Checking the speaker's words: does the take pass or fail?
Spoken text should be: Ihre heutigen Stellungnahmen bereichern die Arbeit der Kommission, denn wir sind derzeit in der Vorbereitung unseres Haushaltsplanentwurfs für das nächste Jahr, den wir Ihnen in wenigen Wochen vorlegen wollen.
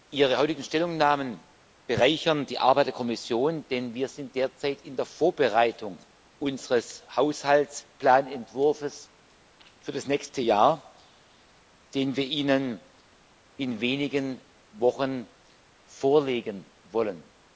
pass